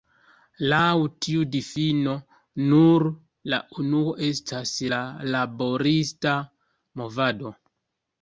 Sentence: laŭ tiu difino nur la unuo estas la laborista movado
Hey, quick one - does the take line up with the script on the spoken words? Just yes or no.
yes